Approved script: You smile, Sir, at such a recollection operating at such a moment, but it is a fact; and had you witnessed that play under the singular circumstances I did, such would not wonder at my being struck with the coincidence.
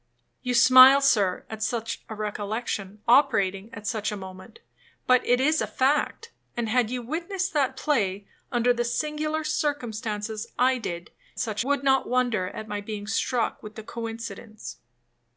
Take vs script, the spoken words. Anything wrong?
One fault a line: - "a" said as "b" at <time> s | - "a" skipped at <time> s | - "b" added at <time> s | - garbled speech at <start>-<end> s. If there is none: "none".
none